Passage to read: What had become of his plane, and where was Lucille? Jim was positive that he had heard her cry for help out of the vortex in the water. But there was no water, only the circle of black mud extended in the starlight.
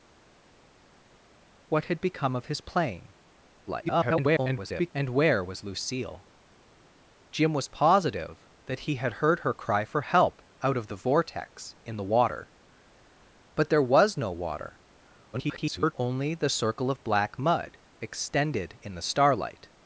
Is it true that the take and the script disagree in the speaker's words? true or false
true